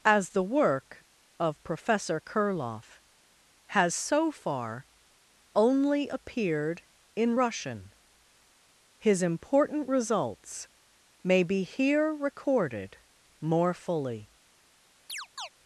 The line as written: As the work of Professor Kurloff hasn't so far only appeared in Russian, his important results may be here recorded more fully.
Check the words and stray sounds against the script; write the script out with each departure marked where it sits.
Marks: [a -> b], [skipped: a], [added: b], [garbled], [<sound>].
As the work of Professor Kurloff [hasn't -> has] so far only appeared in Russian, his important results may be here recorded more fully. [chirp]